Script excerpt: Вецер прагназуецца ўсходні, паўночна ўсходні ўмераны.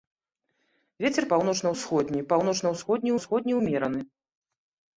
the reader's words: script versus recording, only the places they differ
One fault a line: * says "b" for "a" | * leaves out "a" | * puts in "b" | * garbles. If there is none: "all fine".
* says "паўночна" for "прагназуецца"
* puts in "ўсходні"